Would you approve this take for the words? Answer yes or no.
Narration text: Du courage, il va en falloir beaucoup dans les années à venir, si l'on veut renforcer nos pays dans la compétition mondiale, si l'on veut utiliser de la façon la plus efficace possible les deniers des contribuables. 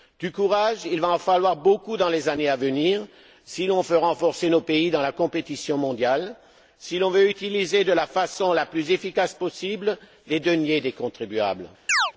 yes